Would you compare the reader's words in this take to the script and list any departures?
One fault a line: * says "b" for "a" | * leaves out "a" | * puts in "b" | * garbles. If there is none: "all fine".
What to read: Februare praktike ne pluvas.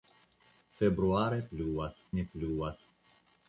* says "pluvas" for "praktike"